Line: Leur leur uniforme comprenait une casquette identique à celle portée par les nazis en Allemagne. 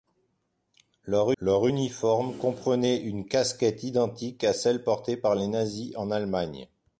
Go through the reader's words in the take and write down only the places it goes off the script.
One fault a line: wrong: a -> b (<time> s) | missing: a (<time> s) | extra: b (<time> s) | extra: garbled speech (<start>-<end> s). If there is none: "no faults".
no faults